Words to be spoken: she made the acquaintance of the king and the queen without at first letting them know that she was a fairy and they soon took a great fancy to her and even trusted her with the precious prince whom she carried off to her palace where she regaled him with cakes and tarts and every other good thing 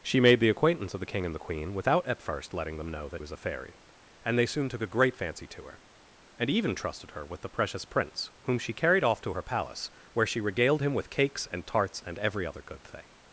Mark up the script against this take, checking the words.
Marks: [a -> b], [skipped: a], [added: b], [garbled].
she made the acquaintance of the king and the queen without at first letting them know that [skipped: she] was a fairy and they soon took a great fancy to her and even trusted her with the precious prince whom she carried off to her palace where she regaled him with cakes and tarts and every other good thing